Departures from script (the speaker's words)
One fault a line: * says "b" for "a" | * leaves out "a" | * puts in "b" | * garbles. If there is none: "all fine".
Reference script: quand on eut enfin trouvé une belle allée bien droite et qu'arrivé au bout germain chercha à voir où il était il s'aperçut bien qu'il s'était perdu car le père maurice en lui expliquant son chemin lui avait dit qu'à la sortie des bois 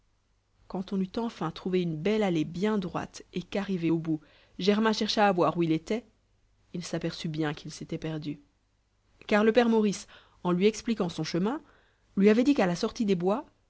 all fine